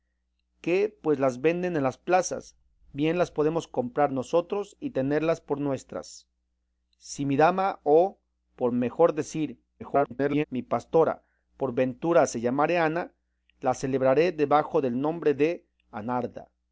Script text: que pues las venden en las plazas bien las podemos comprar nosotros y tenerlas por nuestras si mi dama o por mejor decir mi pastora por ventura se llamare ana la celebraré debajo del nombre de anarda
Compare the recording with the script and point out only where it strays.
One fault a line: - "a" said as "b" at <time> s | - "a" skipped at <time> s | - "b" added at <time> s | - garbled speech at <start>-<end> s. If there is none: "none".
- garbled speech at 9.8-10.4 s